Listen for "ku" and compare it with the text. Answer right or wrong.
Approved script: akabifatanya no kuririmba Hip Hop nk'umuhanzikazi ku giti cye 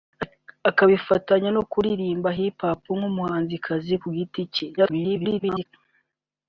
right